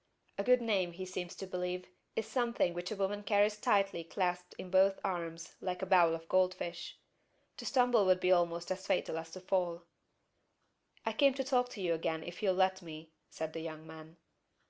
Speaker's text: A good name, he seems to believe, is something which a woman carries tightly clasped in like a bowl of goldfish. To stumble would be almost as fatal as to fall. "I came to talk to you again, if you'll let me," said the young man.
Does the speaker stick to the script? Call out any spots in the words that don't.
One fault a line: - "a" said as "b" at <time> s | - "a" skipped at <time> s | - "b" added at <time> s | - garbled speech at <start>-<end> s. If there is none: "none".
- "both arms" added at 4.7 s